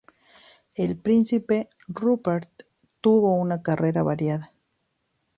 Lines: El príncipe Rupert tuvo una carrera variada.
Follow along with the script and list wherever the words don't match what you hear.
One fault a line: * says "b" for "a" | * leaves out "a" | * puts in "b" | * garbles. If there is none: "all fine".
all fine